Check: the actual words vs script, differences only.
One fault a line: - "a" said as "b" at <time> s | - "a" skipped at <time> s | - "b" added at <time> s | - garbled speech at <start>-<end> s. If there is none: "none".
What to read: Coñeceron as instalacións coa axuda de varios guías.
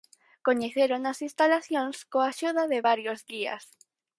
none